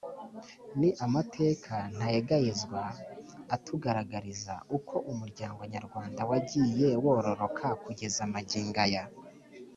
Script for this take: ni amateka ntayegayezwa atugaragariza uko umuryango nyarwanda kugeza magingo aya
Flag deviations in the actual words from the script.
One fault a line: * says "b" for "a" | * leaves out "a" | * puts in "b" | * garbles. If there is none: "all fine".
* puts in "wagiye wororoka"